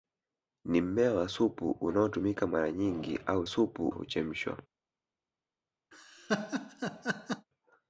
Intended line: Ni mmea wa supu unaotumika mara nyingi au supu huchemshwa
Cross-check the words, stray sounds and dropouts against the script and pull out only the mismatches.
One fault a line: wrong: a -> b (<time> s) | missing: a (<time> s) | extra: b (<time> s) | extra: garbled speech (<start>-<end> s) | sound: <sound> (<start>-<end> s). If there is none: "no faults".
sound: laugh (5.9-7.5 s)